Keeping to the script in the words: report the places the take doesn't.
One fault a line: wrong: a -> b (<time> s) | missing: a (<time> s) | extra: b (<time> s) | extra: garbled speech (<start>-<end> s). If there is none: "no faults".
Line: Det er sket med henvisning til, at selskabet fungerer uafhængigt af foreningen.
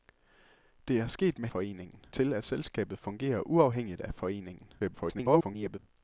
wrong: henvisning -> foreningen (1.5 s)
extra: garbled speech (4.8-5.8 s)